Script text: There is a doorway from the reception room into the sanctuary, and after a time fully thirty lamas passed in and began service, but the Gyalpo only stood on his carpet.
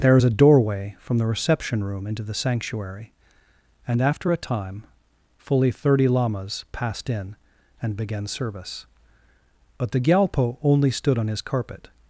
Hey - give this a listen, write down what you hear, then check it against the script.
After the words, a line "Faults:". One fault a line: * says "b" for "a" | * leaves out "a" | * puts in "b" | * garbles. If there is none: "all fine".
There is a doorway from the reception room into the sanctuary, and after a time fully thirty lamas passed in and began service, but the Gyalpo only stood on his carpet.
Faults:
all fine